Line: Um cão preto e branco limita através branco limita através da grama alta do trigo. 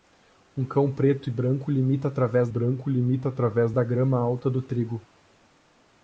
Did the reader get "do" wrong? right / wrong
right